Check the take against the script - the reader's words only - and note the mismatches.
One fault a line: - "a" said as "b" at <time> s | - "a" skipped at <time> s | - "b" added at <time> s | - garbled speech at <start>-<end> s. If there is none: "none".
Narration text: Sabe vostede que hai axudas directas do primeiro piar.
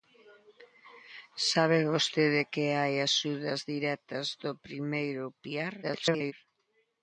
- garbled speech at 5.8-6.3 s